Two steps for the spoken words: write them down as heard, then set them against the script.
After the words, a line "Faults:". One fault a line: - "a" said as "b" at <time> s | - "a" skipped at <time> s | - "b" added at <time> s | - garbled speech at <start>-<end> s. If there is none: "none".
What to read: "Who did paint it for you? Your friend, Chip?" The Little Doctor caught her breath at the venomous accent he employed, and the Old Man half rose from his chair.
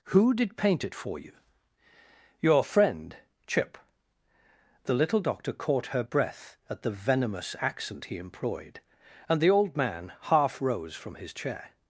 "Who did paint it for you? Your friend, Chip?" The Little Doctor caught her breath at the venomous accent he employed, and the Old Man half rose from his chair.
Faults:
none